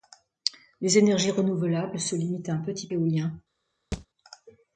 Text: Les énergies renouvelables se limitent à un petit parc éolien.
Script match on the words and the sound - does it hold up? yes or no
no